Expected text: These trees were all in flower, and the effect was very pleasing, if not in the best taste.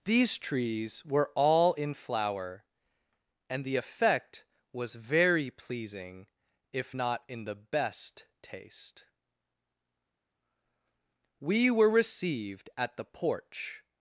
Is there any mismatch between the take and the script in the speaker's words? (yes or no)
yes